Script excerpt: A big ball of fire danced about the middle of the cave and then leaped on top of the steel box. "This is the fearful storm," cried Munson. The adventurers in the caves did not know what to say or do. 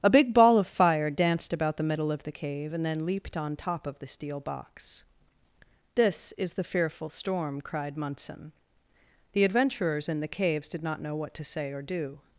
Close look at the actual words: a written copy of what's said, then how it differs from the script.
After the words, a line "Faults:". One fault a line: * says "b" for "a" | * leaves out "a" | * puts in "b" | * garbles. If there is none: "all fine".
A big ball of fire danced about the middle of the cave and then leaped on top of the steel box. "This is the fearful storm," cried Munson. The adventurers in the caves did not know what to say or do.
Faults:
all fine